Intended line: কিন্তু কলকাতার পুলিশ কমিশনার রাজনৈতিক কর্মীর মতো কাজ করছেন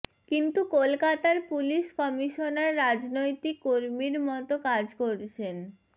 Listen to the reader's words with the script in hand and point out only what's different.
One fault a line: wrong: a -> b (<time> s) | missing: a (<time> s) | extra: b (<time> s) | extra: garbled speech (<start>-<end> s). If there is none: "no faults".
no faults